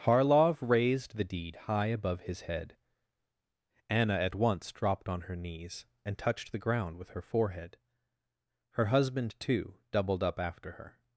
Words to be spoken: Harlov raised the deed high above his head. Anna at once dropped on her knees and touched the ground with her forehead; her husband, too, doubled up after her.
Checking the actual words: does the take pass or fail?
pass